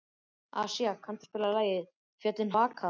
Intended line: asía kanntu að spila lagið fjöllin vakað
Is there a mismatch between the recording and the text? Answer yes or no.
no